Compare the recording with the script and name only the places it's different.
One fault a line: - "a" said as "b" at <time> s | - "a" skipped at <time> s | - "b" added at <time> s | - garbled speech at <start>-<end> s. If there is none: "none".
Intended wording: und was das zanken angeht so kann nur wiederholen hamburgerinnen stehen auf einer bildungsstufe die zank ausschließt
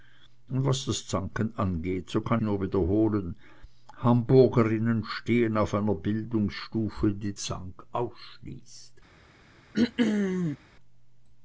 none